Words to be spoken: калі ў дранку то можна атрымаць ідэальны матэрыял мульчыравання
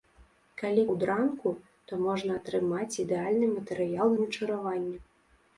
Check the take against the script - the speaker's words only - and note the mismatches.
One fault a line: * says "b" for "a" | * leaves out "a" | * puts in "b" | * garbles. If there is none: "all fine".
all fine